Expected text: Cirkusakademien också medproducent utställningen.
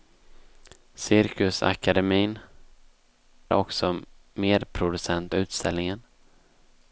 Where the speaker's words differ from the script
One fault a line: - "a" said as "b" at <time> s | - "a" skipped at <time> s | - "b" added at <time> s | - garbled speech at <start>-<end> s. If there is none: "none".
none